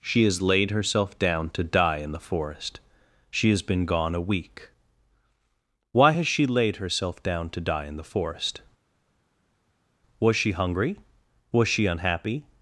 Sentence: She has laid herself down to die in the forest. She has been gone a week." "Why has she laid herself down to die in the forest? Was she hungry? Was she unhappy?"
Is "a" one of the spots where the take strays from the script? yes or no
no